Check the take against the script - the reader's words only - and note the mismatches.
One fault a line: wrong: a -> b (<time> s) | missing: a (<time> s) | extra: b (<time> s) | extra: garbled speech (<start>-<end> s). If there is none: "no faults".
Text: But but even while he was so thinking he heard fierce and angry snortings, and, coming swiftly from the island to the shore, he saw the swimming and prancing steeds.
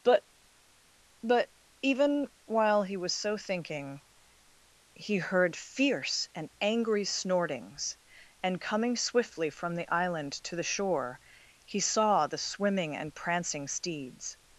no faults